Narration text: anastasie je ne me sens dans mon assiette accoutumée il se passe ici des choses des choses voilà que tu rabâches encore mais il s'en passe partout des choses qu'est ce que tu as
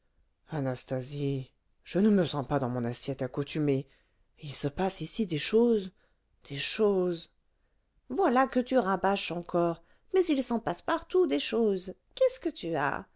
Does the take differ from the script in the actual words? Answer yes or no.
yes